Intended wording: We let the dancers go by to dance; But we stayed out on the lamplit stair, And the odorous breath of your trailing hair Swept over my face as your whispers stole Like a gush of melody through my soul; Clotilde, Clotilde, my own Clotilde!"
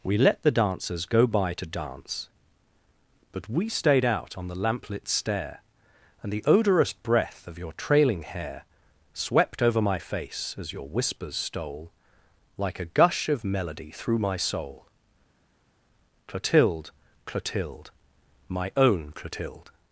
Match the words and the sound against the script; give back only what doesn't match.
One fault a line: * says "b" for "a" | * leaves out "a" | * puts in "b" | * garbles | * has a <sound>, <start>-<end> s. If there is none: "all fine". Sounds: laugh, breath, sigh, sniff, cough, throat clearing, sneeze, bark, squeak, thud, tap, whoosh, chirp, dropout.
all fine